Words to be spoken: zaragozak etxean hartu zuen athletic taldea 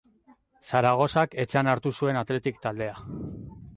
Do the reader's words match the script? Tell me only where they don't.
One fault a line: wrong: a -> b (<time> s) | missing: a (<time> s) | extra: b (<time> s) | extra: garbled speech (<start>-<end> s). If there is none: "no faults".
no faults